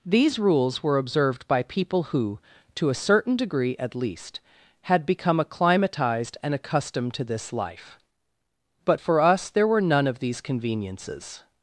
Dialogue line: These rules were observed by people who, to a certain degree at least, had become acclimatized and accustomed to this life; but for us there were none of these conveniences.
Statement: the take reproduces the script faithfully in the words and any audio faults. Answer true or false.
true